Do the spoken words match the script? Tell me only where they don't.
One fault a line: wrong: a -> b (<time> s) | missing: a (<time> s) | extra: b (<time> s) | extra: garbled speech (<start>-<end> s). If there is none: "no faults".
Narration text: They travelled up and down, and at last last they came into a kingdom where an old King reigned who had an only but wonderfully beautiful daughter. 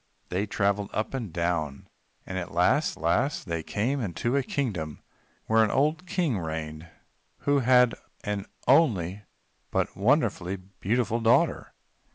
no faults